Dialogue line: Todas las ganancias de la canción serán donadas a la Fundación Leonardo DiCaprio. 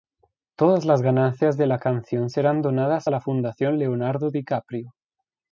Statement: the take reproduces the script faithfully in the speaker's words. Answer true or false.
true